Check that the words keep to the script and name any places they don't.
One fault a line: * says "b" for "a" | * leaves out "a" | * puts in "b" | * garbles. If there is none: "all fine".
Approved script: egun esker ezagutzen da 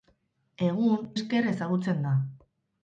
all fine